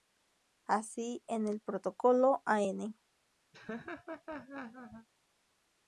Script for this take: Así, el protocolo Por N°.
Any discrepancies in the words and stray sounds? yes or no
yes